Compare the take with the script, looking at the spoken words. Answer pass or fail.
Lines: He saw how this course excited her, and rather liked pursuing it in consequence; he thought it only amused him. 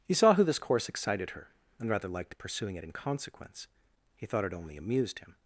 fail